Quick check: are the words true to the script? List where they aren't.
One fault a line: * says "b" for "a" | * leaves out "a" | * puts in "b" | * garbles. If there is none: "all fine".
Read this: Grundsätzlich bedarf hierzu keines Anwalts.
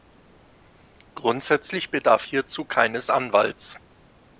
all fine